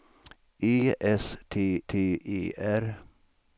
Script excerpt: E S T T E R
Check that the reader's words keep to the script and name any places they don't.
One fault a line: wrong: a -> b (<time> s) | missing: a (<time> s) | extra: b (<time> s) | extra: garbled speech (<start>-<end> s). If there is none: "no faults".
no faults